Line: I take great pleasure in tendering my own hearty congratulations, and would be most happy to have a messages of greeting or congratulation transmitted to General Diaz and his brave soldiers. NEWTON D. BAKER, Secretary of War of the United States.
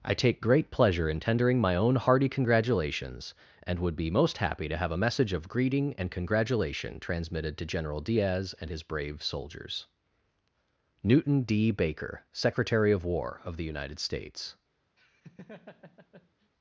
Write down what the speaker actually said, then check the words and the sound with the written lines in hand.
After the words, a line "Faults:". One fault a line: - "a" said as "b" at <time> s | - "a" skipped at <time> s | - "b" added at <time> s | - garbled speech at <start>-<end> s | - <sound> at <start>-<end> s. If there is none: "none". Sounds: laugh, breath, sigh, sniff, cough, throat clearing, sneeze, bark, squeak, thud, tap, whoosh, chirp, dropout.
I take great pleasure in tendering my own hearty congratulations, and would be most happy to have a message of greeting and congratulation transmitted to General Diaz and his brave soldiers. NEWTON D. BAKER, Secretary of War of the United States.
Faults:
- "messages" said as "message" at 4.9 s
- "or" said as "and" at 6.0 s
- laugh at 15.0-16.5 s